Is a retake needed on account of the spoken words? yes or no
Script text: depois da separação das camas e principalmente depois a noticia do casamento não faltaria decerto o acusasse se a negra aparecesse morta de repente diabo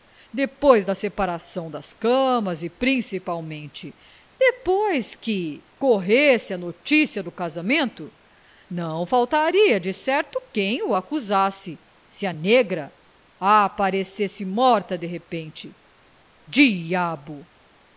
yes